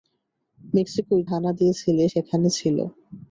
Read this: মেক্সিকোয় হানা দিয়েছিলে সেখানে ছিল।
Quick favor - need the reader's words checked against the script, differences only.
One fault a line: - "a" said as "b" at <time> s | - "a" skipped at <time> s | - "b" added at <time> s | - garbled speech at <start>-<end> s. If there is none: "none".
none